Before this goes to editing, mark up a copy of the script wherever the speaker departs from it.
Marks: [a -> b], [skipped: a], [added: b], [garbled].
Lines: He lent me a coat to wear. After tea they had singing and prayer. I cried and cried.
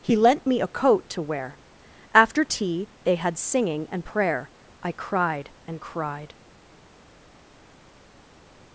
He lent me a coat to wear. After tea they had singing and prayer. I cried and cried.